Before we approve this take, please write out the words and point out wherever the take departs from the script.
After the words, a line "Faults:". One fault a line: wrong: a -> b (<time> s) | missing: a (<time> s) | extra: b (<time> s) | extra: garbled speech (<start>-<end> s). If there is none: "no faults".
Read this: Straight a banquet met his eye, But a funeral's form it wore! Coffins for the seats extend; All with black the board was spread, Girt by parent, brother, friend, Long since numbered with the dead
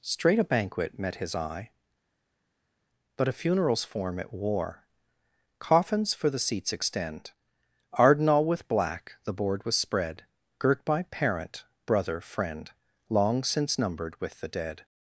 Straight a banquet met his eye, But a funeral's form it wore! Coffins for the seats extend; arden All with black the board was spread, Girt by parent, brother, friend, Long since numbered with the dead
Faults:
extra: arden (7.9 s)